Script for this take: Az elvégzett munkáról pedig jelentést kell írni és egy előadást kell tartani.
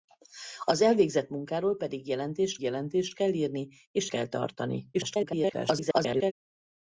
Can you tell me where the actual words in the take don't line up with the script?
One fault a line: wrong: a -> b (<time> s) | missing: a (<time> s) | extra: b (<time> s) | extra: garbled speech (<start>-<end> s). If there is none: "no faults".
extra: jelentést (2.6 s)
missing: egy előadást (4.1 s)
extra: garbled speech (4.9-6.3 s)